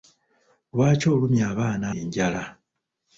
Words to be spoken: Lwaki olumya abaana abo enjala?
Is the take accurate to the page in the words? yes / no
no